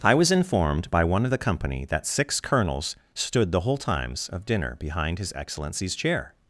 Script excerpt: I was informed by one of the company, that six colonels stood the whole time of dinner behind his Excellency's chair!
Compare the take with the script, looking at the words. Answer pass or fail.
fail